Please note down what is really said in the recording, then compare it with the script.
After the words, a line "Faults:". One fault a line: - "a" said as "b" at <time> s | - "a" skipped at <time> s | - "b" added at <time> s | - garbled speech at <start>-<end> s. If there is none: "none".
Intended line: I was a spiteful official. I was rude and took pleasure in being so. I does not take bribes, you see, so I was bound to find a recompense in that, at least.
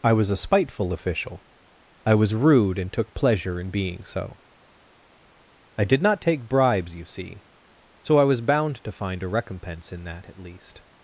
I was a spiteful official. I was rude and took pleasure in being so. I did not take bribes, you see, so I was bound to find a recompense in that, at least.
Faults:
- "does" said as "did" at 5.8 s